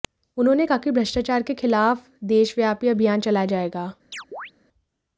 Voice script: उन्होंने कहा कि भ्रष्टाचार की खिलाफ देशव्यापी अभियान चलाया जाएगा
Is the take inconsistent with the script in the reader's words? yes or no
yes